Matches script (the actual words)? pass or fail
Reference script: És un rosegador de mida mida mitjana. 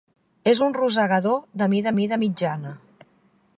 pass